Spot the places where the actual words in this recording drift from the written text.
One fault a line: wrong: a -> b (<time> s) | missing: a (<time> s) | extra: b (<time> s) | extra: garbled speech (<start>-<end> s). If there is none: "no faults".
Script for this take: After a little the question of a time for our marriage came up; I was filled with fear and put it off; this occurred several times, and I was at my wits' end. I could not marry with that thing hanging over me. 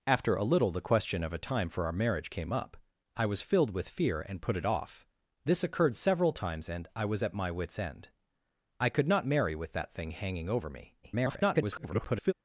extra: garbled speech (11.0-12.3 s)